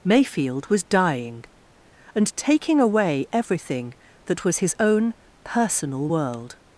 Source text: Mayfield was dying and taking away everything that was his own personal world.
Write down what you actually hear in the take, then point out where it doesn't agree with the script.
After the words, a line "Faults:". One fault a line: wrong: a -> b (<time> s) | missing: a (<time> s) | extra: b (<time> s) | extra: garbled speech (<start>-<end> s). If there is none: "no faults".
Mayfield was dying and taking away everything that was his own personal world.
Faults:
no faults